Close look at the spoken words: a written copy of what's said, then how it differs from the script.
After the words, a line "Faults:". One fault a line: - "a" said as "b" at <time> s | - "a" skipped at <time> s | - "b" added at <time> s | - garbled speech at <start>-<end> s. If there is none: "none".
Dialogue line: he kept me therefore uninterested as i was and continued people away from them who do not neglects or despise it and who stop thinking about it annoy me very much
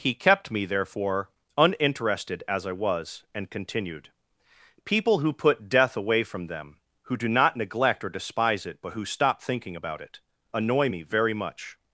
he kept me therefore uninterested as i was and continued people who put death away from them who do not neglect or despise it but who stop thinking about it annoy me very much
Faults:
- "who put death" added at 5.2 s
- "neglects" said as "neglect" at 7.5 s
- "and" said as "but" at 8.8 s